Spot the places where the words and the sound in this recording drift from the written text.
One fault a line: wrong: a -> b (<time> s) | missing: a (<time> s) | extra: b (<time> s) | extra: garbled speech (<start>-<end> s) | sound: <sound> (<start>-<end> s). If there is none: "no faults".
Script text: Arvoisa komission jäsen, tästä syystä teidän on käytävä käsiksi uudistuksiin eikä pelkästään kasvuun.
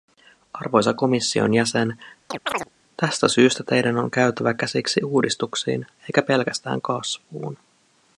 sound: chirp (2.3-2.7 s)